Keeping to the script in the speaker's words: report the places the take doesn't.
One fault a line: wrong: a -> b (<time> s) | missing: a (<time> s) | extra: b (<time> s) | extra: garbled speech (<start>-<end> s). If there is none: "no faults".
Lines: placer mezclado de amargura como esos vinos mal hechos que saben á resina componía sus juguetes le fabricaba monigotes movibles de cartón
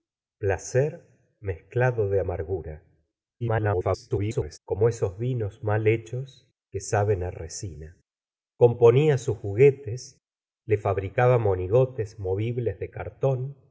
extra: garbled speech (3.4-4.6 s)